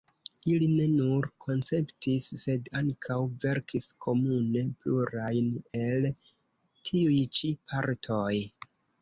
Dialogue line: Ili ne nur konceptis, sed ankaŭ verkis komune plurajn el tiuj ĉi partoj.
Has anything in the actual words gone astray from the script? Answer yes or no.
no